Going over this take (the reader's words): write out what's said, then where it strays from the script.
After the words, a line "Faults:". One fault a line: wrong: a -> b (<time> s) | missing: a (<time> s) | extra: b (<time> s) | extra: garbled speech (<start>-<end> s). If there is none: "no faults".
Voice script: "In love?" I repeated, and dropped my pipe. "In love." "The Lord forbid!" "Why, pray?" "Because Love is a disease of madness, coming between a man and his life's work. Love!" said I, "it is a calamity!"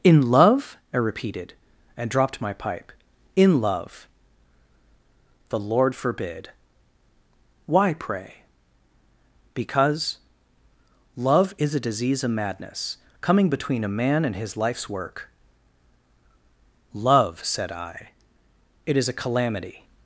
"In love?" I repeated, and dropped my pipe. "In love." "The Lord forbid!" "Why, pray?" "Because Love is a disease of madness, coming between a man and his life's work. Love!" said I, "it is a calamity!"
Faults:
no faults